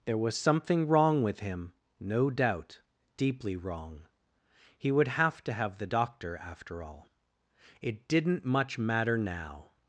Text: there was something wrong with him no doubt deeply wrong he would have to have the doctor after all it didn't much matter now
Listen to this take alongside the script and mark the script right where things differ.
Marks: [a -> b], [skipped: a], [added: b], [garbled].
there was something wrong with him no doubt deeply wrong he would have to have the doctor after all it didn't much matter now